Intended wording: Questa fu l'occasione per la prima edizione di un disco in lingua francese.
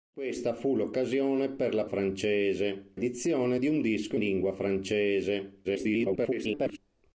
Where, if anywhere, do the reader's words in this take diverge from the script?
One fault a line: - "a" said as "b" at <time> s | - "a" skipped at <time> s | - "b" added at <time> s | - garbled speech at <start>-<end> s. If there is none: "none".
- "prima" said as "francese" at 1.8 s
- "in" skipped at 4.2 s
- garbled speech at 5.6-6.8 s